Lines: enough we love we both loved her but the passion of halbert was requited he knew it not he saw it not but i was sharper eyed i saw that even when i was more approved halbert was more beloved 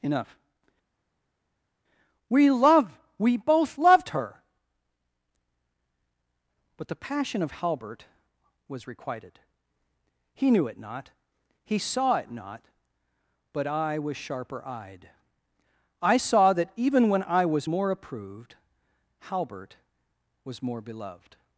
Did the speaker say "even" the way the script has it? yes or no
yes